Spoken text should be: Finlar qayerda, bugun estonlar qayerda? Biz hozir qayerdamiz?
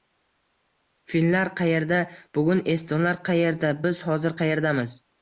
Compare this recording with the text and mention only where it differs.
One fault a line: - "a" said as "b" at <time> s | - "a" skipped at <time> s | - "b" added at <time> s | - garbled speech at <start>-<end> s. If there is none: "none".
none